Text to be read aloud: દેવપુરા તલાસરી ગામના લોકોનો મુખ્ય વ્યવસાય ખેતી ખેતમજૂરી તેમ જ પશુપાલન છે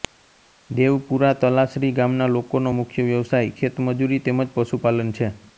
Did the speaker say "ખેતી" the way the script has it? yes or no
no